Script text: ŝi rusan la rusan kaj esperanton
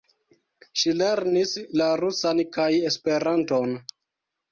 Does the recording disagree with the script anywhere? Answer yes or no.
yes